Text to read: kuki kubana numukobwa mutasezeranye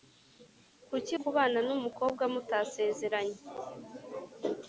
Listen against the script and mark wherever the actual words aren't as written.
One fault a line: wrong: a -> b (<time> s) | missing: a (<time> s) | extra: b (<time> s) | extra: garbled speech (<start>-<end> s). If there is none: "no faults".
no faults